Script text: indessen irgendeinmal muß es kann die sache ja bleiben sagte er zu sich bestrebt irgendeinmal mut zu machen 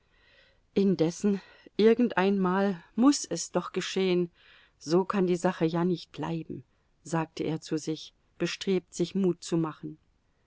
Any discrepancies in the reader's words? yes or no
yes